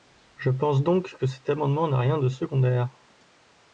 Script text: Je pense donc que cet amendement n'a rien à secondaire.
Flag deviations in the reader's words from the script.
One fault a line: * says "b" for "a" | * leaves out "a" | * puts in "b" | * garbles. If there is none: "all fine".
* says "de" for "à"